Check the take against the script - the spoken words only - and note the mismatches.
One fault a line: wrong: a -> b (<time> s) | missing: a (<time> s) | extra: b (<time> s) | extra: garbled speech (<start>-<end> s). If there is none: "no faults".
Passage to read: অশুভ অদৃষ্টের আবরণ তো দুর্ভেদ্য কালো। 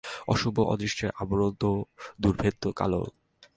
no faults